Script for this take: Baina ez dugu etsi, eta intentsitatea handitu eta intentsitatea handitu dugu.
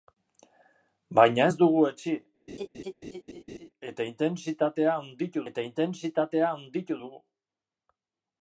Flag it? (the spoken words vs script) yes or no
no